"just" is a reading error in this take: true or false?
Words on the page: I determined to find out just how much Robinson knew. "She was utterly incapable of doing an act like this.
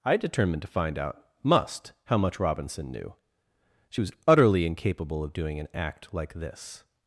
true